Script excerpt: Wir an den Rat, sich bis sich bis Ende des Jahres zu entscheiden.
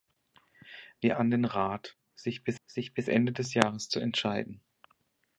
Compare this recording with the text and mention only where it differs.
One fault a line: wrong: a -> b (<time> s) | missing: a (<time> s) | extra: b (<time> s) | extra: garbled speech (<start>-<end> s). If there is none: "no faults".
no faults